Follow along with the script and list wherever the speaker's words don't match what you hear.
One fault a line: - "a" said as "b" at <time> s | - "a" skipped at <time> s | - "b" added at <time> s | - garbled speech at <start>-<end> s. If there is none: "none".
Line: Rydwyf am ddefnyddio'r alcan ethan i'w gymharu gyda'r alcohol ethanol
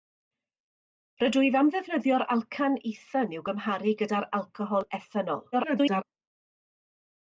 - garbled speech at 5.5-6.0 s